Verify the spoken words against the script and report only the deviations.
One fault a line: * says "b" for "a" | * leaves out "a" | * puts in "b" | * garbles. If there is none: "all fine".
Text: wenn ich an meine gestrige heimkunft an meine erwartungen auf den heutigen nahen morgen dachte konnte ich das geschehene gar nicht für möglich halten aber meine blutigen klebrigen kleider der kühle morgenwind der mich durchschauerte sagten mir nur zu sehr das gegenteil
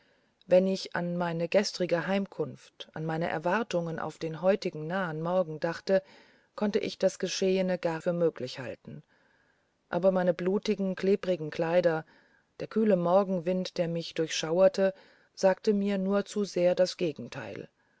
* leaves out "nicht"